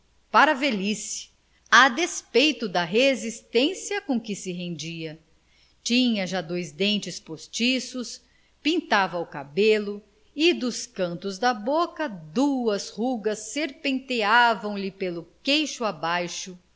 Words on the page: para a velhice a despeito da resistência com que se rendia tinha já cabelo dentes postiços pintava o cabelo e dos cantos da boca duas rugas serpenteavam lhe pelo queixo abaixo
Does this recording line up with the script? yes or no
no